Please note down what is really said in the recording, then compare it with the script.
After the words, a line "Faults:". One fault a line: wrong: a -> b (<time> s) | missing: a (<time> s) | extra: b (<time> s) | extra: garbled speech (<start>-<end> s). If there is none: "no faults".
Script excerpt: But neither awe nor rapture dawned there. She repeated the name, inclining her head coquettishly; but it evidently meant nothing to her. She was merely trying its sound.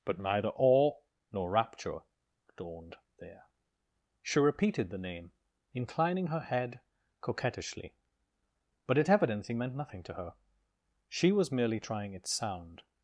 But neither awe nor rapture dawned there. She repeated the name, inclining her head coquettishly; but it evidently meant nothing to her. She was merely trying its sound.
Faults:
no faults